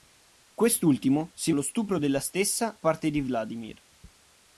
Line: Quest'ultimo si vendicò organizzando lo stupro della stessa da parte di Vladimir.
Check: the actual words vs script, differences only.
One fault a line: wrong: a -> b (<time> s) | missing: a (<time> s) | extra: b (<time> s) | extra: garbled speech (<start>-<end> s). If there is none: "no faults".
missing: vendicò organizzando (1.5 s)
missing: da (2.8 s)